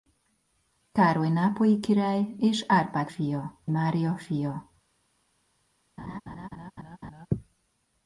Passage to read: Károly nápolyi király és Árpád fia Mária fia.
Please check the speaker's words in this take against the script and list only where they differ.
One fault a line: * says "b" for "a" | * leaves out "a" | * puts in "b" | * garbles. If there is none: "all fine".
all fine